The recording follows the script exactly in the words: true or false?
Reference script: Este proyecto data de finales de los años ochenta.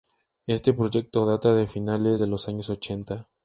true